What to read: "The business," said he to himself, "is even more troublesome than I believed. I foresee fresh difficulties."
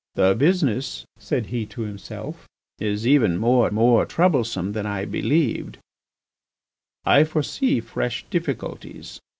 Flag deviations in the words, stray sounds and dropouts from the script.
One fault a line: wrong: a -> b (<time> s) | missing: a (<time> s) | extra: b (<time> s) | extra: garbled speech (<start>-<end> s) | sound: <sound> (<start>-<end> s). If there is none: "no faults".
extra: more (3.7 s)